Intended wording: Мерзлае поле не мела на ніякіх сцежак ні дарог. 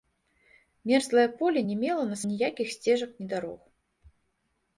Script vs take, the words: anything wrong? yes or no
no